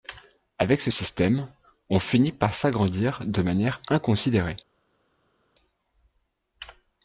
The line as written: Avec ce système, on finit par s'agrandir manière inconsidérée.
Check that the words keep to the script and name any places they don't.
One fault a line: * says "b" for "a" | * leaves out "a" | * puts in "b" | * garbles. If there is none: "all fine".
* puts in "de"